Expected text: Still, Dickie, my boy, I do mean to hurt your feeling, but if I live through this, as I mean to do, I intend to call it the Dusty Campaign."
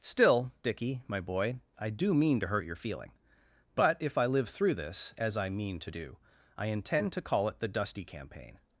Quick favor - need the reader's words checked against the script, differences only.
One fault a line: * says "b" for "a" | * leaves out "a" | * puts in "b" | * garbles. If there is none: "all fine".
all fine